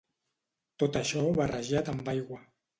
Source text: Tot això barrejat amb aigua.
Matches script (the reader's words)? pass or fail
pass